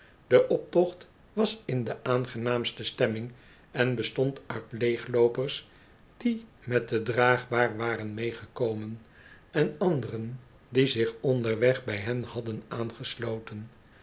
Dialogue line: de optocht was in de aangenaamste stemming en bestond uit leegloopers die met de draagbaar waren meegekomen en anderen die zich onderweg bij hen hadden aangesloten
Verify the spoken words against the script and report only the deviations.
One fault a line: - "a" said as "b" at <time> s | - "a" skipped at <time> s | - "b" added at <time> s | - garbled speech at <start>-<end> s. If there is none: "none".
none